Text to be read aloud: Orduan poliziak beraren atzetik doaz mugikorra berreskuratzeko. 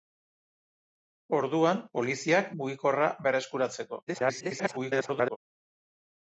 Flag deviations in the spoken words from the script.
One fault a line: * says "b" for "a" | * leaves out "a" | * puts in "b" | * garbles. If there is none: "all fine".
* leaves out "beraren atzetik doaz"
* garbles